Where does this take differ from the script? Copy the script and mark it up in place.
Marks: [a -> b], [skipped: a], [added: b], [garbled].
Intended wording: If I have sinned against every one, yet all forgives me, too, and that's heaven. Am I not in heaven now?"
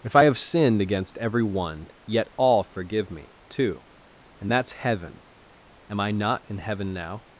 If I have sinned against every one, yet all [forgives -> forgive] me, too, and that's heaven. Am I not in heaven now?"